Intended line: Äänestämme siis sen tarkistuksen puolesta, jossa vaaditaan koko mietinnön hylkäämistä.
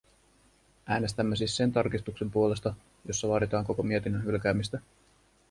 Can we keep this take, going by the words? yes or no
yes